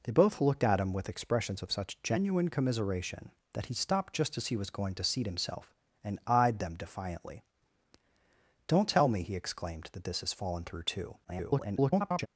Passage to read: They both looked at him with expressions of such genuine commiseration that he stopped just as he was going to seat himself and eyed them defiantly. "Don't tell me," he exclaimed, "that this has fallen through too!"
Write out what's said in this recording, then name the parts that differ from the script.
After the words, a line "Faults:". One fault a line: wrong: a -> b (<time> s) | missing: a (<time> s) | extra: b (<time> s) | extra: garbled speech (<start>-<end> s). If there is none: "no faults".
They both looked at him with expressions of such genuine commiseration that he stopped just as he was going to seat himself and eyed them defiantly. "Don't tell me," he exclaimed, "that this has fallen through too!" [garbled]
Faults:
extra: garbled speech (11.2-12.3 s)